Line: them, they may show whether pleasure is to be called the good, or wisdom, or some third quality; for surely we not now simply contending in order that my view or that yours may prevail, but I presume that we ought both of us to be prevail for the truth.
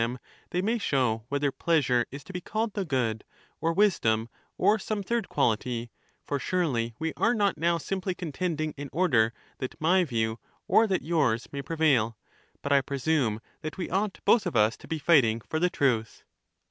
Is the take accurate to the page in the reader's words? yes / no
no